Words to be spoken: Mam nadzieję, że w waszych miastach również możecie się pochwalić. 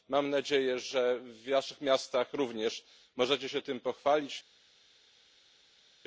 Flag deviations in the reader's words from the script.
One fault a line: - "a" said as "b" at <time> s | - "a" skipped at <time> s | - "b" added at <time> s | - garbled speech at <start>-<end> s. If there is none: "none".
- "tym" added at 3.6 s